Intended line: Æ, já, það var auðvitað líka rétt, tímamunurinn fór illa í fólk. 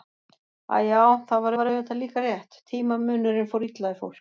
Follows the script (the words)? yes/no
no